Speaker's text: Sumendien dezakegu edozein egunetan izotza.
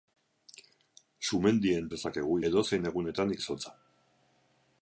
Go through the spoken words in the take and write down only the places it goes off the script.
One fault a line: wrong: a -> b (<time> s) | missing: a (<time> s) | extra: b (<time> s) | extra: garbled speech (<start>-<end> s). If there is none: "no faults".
no faults